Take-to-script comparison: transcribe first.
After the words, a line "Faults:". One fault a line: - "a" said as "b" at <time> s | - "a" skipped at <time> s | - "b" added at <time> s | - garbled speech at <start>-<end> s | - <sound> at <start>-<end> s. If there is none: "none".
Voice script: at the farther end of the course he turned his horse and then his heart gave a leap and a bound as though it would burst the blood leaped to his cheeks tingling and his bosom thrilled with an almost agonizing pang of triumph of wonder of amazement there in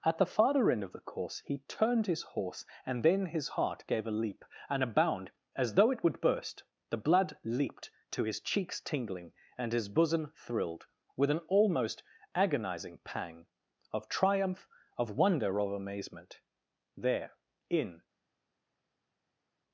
at the farther end of the course he turned his horse and then his heart gave a leap and a bound as though it would burst the blood leaped to his cheeks tingling and his bosom thrilled with an almost agonizing pang of triumph of wonder of amazement there in
Faults:
none